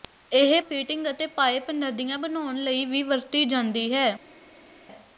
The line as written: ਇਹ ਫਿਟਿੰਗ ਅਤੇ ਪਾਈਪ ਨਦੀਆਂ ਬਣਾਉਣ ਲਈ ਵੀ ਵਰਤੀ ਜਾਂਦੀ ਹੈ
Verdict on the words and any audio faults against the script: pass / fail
pass